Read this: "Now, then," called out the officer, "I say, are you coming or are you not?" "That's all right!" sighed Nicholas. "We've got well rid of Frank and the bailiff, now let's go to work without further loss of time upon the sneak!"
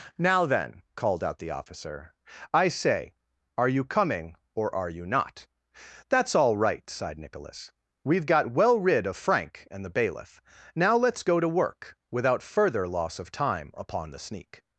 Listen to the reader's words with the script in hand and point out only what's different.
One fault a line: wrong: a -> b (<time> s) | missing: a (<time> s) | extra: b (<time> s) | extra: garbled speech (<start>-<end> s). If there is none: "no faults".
no faults